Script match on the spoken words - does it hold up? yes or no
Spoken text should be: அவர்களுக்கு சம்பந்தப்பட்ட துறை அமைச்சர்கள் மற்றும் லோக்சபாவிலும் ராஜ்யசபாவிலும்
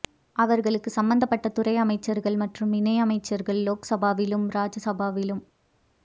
no